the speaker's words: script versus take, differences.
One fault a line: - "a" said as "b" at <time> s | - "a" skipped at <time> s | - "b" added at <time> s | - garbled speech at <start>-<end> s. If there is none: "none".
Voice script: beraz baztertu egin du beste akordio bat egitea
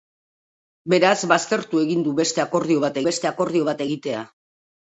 - "beste akordio bat" added at 3.1 s